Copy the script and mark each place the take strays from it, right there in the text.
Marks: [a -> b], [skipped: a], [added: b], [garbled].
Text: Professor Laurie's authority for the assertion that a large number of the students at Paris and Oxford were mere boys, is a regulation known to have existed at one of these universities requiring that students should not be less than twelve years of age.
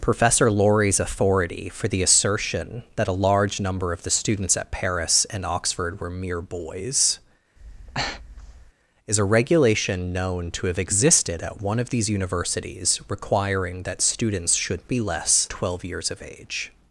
Professor Laurie's authority for the assertion that a large number of the students at Paris and Oxford were mere boys, is a regulation known to have existed at one of these universities requiring that students should [skipped: not] be less [skipped: than] twelve years of age.